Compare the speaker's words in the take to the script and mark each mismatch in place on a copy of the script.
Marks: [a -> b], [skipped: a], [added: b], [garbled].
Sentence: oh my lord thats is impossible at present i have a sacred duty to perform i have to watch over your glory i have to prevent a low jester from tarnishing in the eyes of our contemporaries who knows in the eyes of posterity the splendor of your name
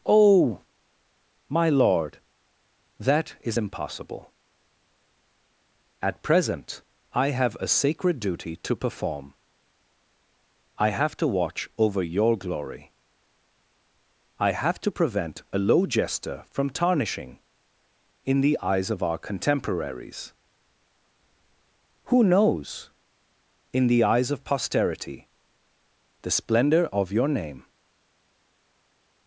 oh my lord [thats -> that] is impossible at present i have a sacred duty to perform i have to watch over your glory i have to prevent a low jester from tarnishing in the eyes of our contemporaries who knows in the eyes of posterity the splendor of your name